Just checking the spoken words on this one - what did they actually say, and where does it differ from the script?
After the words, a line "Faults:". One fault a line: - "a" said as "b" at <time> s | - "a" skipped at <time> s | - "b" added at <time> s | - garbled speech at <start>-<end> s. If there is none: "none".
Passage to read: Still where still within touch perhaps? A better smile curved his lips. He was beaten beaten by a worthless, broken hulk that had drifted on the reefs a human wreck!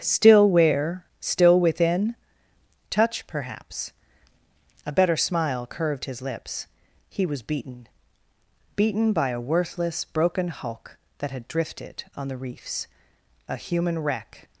Still where still within touch perhaps? A better smile curved his lips. He was beaten beaten by a worthless, broken hulk that had drifted on the reefs a human wreck!
Faults:
none